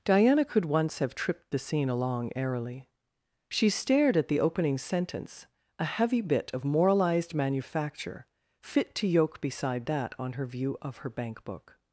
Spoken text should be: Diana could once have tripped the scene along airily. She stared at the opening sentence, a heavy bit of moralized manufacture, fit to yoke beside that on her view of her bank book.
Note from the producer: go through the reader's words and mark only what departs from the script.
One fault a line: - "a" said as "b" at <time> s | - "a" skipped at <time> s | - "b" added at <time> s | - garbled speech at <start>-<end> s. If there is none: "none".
none